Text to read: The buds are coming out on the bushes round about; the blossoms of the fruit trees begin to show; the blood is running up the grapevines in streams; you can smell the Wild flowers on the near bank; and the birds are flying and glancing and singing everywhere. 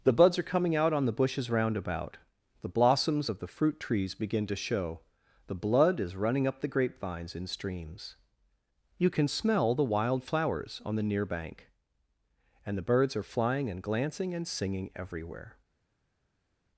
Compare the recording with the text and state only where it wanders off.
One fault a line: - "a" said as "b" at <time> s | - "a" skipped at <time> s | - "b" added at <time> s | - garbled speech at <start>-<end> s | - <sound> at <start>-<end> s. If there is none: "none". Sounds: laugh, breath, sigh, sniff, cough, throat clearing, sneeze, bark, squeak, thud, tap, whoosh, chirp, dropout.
none